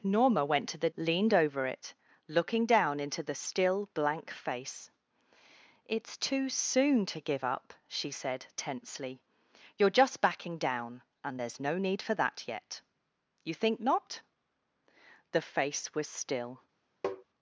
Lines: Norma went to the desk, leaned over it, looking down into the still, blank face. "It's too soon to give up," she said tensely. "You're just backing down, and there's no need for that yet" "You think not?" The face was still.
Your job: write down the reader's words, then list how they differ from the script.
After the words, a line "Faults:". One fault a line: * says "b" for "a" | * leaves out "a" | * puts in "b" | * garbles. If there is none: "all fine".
Norma went to the leaned over it, looking down into the still, blank face. "It's too soon to give up," she said tensely. "You're just backing down, and there's no need for that yet" "You think not?" The face was still.
Faults:
* leaves out "desk"